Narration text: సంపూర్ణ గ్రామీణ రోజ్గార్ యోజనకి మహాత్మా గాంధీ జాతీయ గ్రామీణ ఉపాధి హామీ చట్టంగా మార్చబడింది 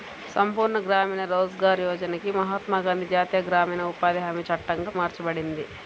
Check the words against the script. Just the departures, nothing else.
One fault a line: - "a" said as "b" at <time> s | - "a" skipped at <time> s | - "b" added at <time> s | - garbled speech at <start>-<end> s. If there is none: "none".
none